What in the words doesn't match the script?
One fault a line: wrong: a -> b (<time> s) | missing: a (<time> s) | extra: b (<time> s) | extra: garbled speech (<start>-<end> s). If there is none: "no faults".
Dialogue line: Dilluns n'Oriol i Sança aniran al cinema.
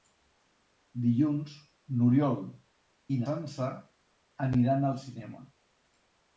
no faults